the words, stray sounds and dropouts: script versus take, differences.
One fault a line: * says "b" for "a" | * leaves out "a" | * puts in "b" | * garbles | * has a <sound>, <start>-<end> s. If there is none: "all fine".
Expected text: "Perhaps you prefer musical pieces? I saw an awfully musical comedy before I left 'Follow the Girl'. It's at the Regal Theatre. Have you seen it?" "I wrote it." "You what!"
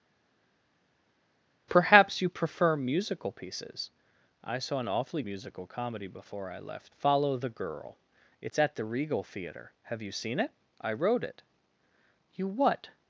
all fine